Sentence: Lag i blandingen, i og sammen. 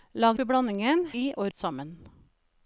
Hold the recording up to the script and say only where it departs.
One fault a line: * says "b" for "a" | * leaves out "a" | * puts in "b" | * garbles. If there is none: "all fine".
all fine